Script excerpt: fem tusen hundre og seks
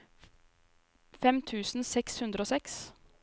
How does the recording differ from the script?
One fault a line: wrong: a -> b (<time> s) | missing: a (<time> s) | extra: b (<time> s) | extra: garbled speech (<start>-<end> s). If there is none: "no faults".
extra: seks (1.9 s)